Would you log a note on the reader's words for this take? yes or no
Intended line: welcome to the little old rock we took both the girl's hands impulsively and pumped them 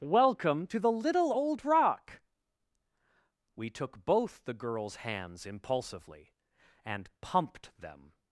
no